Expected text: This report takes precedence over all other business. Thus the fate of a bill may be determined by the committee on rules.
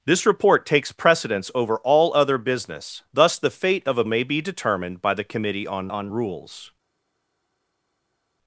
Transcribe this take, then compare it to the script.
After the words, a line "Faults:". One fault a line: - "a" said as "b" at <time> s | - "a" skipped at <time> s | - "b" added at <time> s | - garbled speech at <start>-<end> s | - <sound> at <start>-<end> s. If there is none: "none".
This report takes precedence over all other business. Thus the fate of a may be determined by the committee on on rules.
Faults:
- "bill" skipped at 4.0 s
- "on" added at 5.9 s